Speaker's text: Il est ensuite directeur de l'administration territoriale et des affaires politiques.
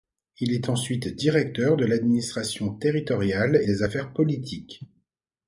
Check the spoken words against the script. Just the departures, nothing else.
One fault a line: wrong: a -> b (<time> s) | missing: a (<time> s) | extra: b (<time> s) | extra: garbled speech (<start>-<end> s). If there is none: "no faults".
missing: et (3.6 s)